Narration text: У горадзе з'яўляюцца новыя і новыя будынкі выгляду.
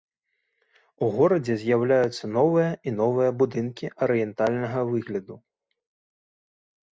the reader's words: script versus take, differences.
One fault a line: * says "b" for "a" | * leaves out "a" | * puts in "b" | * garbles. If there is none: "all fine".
* puts in "арыентальнага"